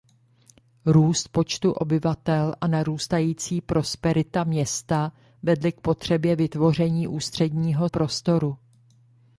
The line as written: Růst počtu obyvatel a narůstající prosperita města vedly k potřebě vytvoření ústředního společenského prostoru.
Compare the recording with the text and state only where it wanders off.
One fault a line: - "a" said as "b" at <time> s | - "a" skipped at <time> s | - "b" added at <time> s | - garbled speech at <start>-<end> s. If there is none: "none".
- "společenského" skipped at 7.9 s